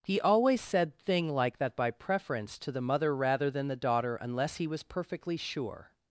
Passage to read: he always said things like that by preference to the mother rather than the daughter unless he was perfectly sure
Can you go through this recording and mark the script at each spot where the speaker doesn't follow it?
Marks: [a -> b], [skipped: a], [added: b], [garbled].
he always said [things -> thing] like that by preference to the mother rather than the daughter unless he was perfectly sure